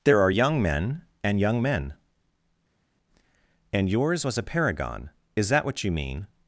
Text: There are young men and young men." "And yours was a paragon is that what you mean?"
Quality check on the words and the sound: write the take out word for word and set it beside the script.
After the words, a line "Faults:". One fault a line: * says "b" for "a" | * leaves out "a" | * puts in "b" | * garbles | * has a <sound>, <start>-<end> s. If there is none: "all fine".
There are young men and young men." "And yours was a paragon is that what you mean?"
Faults:
all fine